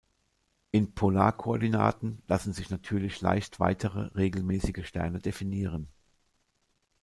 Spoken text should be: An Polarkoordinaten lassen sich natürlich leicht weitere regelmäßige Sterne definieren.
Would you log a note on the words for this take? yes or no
yes